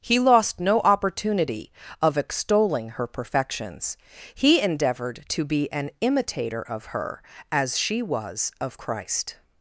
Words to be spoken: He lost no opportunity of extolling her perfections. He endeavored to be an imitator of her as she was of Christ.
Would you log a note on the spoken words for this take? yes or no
no